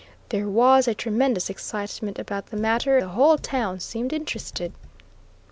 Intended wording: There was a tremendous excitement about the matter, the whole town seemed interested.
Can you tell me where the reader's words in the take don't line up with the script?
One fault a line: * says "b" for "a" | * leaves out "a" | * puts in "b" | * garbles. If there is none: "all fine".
all fine